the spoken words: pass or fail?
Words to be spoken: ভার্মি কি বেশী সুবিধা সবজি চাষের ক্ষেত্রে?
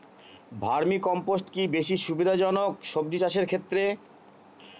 fail